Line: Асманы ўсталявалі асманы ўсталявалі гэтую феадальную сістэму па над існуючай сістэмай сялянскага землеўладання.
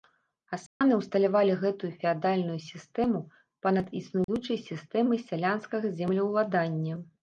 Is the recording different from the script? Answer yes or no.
yes